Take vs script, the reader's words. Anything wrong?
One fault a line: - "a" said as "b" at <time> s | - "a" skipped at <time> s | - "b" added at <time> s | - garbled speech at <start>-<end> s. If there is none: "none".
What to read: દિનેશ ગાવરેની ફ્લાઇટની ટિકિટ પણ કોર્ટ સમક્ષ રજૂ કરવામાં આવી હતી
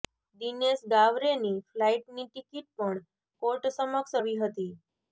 - "રજૂ કરવામાં" skipped at 4.2 s